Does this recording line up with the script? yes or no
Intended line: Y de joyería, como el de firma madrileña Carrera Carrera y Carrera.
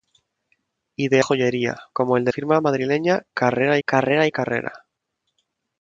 yes